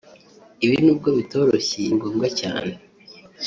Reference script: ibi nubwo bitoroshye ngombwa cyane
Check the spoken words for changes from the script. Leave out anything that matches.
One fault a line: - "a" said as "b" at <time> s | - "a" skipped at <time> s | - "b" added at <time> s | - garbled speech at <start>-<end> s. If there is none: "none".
none